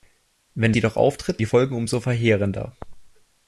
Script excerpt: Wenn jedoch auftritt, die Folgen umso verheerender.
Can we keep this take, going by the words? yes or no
yes